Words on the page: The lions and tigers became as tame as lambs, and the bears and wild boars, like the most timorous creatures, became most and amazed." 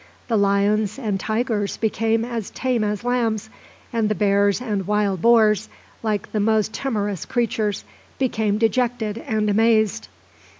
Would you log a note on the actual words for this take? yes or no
yes